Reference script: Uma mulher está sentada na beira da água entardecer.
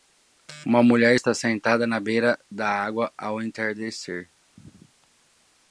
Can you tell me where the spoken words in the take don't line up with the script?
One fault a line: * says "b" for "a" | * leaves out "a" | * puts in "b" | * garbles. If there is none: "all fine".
* puts in "ao"